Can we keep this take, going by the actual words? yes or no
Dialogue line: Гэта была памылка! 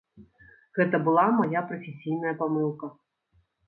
no